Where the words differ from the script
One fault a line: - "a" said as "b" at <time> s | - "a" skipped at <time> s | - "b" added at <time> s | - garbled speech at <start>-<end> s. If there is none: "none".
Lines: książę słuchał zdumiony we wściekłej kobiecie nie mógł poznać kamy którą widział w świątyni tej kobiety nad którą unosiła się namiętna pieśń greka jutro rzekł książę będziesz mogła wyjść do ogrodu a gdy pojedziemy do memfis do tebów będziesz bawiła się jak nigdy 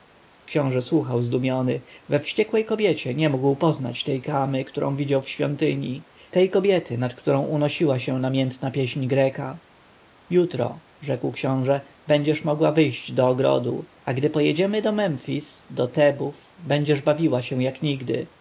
- "tej" added at 4.0 s